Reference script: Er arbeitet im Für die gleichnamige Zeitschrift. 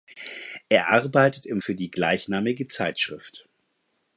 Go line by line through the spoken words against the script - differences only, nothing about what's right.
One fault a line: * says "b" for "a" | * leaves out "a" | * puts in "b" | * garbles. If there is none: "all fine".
all fine